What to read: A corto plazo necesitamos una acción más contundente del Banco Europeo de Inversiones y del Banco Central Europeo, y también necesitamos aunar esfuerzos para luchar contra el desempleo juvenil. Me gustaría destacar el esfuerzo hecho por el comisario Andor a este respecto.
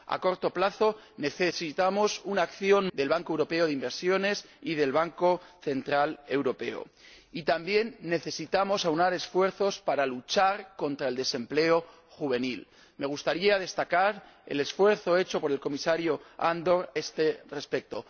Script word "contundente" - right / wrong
wrong